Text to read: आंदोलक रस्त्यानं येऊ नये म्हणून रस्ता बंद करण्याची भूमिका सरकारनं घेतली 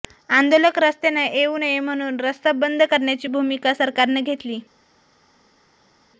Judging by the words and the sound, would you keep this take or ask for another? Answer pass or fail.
pass